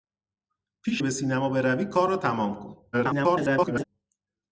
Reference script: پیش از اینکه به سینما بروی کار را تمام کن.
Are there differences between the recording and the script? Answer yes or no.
yes